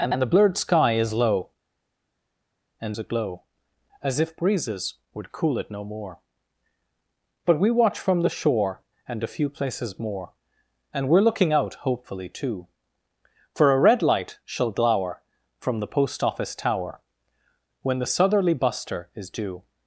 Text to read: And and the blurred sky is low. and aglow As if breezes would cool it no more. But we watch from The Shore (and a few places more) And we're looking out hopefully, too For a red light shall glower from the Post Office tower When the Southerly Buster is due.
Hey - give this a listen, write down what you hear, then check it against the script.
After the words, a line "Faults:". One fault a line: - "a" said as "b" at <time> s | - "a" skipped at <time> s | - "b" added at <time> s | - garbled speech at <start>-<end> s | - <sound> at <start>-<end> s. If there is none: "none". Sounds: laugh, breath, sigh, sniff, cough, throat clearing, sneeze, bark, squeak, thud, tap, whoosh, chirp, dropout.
And and the blurred sky is low. and aglow As if breezes would cool it no more. But we watch from The Shore (and a few places more) And we're looking out hopefully, too For a red light shall glower from the Post Office tower When the Southerly Buster is due.
Faults:
none